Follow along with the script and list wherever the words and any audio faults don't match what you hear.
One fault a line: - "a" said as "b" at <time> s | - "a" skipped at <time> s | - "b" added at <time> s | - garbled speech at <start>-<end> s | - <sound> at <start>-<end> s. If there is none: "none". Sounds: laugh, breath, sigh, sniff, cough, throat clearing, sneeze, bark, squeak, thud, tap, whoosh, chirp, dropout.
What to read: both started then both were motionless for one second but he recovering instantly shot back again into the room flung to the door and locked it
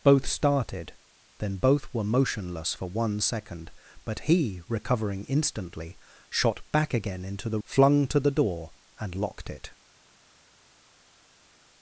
- "room" skipped at 7.6 s